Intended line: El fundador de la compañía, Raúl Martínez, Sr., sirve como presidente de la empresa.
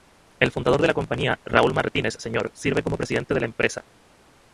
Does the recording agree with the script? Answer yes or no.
yes